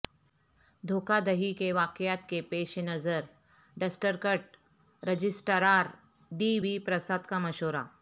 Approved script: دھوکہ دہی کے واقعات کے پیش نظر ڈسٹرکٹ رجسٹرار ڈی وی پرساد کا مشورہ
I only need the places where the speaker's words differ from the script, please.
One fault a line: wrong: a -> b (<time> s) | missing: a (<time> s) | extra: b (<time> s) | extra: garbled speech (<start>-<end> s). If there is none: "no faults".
no faults